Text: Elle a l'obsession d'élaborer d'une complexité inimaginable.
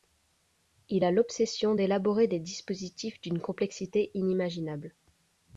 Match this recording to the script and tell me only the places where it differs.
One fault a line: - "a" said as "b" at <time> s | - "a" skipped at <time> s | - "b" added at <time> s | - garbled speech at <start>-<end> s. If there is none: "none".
- "Elle" said as "Il" at 0.9 s
- "des dispositifs" added at 2.3 s